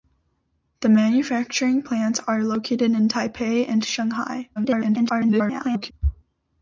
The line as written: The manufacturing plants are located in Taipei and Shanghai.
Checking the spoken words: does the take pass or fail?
fail